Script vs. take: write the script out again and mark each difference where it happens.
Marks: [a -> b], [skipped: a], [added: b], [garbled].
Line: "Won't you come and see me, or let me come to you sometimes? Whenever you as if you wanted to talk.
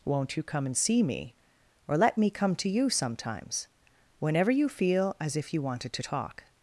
"Won't you come and see me, or let me come to you sometimes? Whenever you [added: feel] as if you wanted to talk.